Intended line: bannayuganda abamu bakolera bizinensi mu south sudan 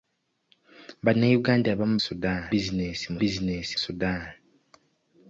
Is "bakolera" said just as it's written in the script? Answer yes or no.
no